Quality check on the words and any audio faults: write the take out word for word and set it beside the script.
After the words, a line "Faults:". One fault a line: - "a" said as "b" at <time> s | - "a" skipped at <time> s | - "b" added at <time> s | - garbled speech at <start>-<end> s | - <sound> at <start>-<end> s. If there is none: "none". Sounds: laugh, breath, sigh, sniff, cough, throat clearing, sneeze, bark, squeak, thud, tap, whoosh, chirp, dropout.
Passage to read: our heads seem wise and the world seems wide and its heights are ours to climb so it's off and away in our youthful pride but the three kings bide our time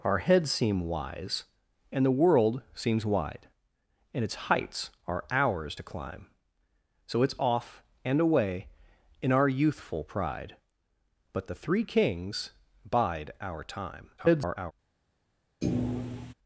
our heads seem wise and the world seems wide and its heights are ours to climb so it's off and away in our youthful pride but the three kings bide our time [garbled]
Faults:
- garbled speech at 14.2-14.7 s
- thud at 15.6-16.3 s